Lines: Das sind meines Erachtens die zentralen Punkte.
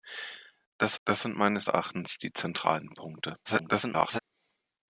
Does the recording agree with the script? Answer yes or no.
no